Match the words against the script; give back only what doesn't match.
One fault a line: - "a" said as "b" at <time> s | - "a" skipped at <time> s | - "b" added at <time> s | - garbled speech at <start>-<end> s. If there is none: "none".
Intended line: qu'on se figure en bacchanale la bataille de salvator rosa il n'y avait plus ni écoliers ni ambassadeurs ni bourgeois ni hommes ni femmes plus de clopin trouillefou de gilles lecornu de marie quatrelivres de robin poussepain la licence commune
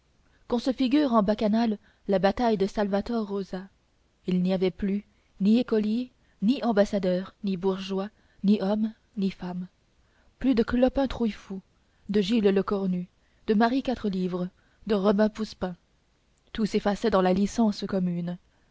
- "tout s'effaçait dans" added at 16.5 s